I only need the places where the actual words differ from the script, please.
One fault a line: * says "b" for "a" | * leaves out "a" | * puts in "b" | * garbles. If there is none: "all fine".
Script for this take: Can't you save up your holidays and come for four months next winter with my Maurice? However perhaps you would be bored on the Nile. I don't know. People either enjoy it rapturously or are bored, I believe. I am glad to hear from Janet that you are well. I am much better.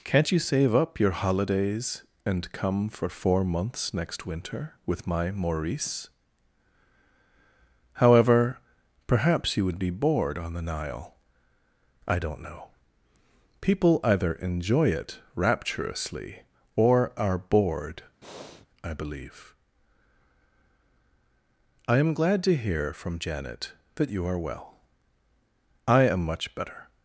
all fine